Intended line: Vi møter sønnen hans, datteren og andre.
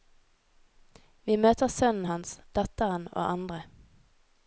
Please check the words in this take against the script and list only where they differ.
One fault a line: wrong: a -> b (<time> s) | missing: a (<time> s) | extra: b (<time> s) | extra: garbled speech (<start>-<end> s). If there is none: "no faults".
no faults